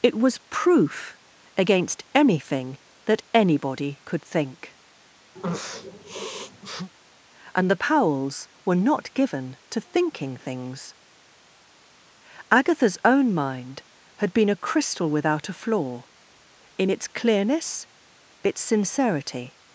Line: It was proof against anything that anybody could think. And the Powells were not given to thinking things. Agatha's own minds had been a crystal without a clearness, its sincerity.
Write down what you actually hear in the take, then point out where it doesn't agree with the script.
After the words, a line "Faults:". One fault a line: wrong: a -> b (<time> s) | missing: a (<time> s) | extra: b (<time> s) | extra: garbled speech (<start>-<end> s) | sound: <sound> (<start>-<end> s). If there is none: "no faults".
It was proof against anything that anybody could think. And the Powells were not given to thinking things. Agatha's own mind had been a crystal without a flaw, in its clearness, its sincerity.
Faults:
sound: sniff (5.4-6.9 s)
wrong: minds -> mind (13.3 s)
extra: flaw in its (15.5 s)